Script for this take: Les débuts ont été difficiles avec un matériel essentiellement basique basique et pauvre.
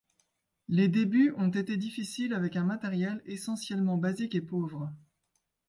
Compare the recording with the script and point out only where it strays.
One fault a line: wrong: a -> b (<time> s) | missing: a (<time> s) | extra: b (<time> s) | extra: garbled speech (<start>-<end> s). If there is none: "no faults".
missing: basique (4.3 s)